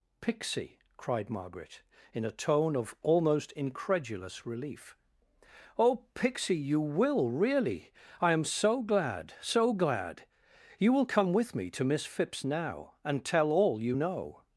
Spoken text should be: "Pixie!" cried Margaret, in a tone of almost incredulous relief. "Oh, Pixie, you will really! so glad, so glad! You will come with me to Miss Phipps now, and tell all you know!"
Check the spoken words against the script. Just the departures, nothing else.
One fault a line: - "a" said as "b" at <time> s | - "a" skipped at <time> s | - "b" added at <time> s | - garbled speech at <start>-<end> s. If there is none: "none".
- "I am" added at 8.2 s